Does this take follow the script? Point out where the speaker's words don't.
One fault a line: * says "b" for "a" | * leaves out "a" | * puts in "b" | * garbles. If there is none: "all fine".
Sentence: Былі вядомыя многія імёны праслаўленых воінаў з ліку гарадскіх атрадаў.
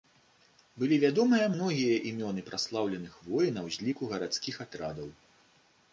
all fine